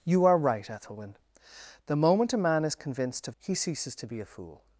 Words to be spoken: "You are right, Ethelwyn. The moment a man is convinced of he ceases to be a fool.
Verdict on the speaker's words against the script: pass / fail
pass